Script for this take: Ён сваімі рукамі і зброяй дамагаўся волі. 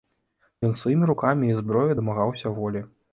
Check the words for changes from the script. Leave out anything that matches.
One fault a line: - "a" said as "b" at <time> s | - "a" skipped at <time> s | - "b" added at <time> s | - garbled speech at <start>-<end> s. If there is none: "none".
none